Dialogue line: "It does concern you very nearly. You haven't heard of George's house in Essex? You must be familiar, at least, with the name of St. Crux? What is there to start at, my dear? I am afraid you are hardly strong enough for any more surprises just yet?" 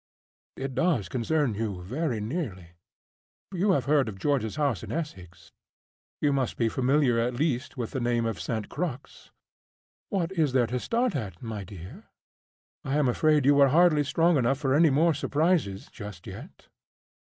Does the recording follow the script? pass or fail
fail